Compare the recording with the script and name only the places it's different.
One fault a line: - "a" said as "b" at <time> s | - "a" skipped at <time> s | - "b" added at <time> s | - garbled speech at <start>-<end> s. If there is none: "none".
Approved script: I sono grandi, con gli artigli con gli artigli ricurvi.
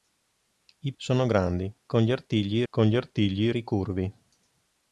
none